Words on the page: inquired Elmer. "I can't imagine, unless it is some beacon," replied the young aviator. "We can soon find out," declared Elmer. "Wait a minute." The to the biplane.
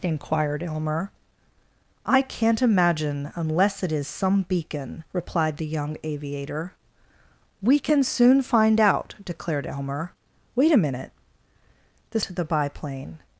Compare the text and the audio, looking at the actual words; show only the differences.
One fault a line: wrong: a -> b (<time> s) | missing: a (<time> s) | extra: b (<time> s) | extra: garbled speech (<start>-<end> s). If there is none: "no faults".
no faults